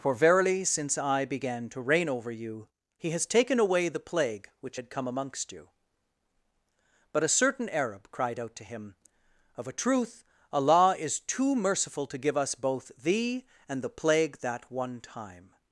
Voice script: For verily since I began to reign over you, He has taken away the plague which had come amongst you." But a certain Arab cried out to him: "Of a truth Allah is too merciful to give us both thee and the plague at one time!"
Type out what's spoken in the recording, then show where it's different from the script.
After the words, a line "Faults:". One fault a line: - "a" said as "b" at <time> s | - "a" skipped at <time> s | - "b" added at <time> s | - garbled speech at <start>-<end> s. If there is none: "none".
For verily since I began to reign over you, He has taken away the plague which had come amongst you." But a certain Arab cried out to him: "Of a truth Allah is too merciful to give us both thee and the plague that one time!"
Faults:
- "at" said as "that" at 14.4 s